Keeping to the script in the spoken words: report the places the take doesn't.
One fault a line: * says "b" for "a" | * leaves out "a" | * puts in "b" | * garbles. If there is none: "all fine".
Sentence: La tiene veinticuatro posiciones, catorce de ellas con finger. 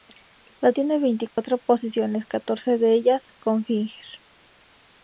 all fine